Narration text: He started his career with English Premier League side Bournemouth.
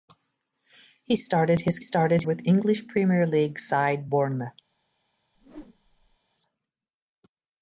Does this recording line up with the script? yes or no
no